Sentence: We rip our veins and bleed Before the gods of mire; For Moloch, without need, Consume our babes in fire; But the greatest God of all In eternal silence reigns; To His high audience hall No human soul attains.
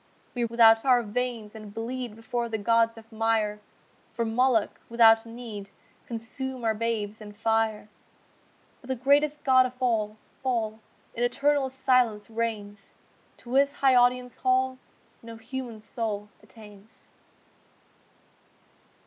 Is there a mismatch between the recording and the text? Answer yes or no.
yes